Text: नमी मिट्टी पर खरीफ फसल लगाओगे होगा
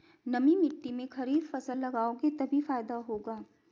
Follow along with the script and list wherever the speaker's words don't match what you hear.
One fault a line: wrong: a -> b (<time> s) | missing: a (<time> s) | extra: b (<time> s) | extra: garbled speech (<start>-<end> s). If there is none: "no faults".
wrong: पर -> में (0.9 s)
extra: तभी फायदा (2.3 s)